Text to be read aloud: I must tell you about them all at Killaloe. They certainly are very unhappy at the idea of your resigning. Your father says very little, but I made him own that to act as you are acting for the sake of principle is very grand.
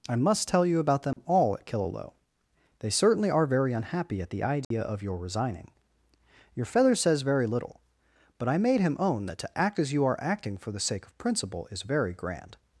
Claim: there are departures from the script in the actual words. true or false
true